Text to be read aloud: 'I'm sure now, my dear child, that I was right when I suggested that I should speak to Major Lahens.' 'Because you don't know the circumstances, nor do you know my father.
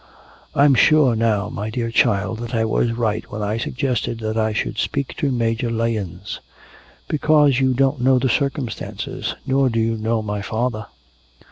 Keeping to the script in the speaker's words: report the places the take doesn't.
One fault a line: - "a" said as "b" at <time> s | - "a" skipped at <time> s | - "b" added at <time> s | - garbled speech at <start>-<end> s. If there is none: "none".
none